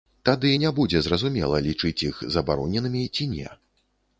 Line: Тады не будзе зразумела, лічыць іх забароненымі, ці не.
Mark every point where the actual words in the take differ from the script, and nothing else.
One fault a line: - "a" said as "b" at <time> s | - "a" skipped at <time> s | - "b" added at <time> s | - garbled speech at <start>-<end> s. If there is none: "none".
none